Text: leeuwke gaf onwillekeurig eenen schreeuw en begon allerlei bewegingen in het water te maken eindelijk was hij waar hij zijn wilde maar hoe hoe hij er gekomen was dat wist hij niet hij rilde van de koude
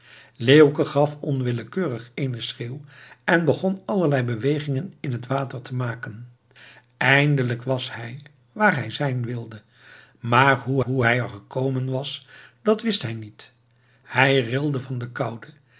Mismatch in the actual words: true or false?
false